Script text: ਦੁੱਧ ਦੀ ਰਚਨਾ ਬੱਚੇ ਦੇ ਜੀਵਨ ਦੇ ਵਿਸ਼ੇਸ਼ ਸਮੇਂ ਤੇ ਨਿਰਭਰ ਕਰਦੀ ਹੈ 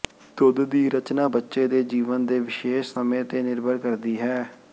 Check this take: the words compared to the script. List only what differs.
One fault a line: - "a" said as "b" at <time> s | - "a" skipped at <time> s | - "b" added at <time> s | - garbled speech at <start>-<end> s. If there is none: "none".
none